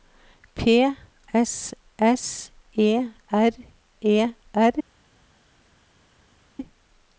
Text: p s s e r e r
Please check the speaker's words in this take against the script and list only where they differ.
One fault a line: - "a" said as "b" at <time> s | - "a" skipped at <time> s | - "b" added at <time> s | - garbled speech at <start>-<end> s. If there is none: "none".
none